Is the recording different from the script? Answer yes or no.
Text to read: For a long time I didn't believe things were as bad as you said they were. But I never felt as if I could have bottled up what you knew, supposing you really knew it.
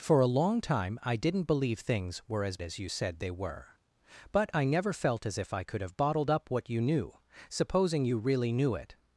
yes